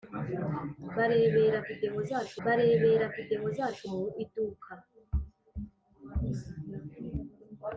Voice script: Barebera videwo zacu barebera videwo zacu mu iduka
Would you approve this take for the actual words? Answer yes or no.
yes